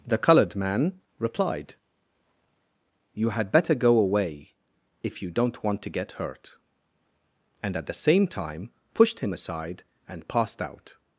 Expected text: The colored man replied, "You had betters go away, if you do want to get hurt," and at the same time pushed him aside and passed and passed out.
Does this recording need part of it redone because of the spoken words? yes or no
yes